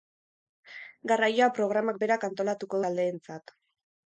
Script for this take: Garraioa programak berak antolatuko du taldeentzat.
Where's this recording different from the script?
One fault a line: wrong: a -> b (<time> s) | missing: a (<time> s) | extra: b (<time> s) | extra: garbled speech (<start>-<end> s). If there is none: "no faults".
missing: du (2.8 s)